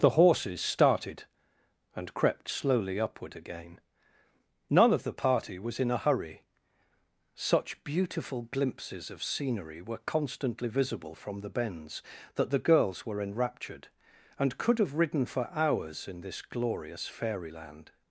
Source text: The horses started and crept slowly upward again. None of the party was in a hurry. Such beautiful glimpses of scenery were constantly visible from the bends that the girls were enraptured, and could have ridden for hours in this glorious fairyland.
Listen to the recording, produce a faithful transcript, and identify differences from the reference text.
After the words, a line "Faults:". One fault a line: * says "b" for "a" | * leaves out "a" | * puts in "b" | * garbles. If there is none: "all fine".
The horses started and crept slowly upward again. None of the party was in a hurry. Such beautiful glimpses of scenery were constantly visible from the bends that the girls were enraptured, and could have ridden for hours in this glorious fairyland.
Faults:
all fine